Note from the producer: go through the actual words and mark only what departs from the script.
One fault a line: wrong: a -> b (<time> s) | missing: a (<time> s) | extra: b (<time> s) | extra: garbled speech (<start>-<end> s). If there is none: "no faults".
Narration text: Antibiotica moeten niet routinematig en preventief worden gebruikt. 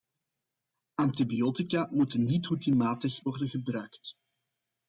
missing: en preventief (3.2 s)